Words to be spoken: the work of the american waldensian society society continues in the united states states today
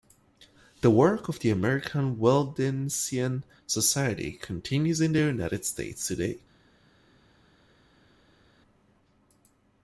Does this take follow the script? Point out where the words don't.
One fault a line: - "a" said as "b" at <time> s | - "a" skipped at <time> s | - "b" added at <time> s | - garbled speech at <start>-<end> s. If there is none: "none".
- "society" skipped at 4.3 s
- "states" skipped at 6.1 s